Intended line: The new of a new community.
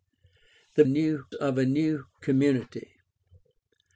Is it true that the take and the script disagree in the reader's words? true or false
false